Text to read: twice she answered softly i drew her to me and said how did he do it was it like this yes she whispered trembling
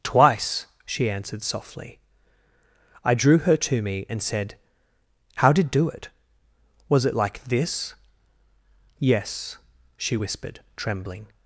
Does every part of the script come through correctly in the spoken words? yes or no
no